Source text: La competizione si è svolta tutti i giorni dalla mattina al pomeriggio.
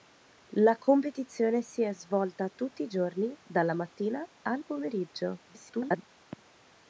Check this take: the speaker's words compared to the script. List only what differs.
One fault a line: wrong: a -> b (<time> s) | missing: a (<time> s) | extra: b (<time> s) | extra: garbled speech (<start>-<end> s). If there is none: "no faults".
extra: garbled speech (5.5-6.1 s)